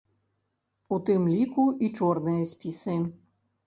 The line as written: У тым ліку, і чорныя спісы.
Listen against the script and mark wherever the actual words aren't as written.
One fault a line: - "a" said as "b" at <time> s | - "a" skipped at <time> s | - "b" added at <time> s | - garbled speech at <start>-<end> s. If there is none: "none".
none